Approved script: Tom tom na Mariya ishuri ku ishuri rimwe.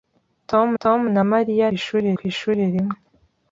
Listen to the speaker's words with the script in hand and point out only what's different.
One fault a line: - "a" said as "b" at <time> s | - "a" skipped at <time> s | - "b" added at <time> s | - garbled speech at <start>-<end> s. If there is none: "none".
none